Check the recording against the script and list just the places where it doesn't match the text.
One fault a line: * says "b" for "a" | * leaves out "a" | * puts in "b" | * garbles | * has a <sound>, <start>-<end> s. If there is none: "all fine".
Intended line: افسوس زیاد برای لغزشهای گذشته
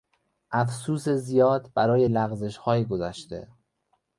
all fine